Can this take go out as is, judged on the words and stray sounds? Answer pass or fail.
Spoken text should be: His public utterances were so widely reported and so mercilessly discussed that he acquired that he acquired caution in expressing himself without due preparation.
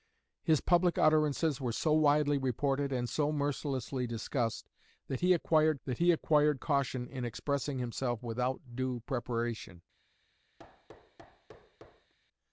fail